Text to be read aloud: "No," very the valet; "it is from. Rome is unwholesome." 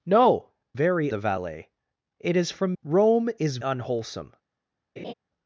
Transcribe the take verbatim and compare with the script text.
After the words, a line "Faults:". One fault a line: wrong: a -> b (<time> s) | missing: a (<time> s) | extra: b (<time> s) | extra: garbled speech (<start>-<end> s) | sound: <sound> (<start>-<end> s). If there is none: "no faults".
"No," very the valet; "it is from. Rome is unwholesome."
Faults:
sound: laugh (5.0-5.1 s)